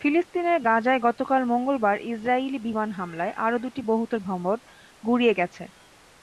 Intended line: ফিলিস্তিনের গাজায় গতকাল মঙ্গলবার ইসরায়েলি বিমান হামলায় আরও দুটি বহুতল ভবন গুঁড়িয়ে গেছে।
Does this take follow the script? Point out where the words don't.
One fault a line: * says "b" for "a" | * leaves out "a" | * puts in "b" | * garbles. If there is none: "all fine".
all fine